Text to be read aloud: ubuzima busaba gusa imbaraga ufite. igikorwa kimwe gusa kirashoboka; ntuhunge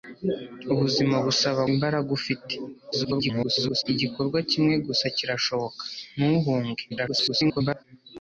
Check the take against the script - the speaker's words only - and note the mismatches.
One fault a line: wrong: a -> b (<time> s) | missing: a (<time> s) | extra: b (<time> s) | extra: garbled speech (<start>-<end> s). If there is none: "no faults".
missing: gusa (1.6 s)
extra: garbled speech (2.9-3.8 s)
extra: garbled speech (6.9-7.8 s)